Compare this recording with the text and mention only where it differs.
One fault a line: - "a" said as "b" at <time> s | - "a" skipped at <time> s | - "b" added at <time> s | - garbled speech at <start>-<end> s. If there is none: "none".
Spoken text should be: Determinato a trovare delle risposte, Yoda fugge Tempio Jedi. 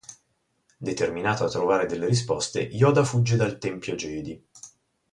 - "dal" added at 3.4 s